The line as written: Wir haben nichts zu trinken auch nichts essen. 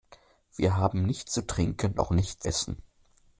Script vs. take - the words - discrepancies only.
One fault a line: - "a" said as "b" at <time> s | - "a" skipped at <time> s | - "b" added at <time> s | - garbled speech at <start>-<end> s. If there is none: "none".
none